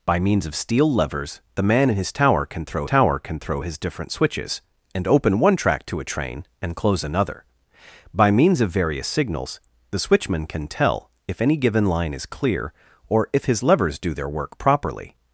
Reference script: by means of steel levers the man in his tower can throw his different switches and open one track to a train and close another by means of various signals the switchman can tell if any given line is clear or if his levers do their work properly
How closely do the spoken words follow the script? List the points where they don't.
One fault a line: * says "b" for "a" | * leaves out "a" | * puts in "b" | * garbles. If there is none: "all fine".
* puts in "tower can throw"